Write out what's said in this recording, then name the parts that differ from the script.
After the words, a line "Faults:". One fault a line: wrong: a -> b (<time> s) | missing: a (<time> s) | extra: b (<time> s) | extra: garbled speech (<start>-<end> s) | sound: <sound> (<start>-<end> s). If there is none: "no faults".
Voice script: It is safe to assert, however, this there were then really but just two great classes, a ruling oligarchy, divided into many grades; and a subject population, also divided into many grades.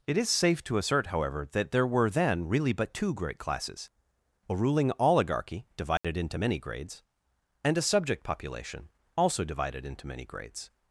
It is safe to assert, however, that there were then really but two great classes, a ruling oligarchy, divided into many grades; and a subject population, also divided into many grades.
Faults:
wrong: this -> that (1.5 s)
missing: just (3.0 s)
sound: dropout (6.0-6.0 s)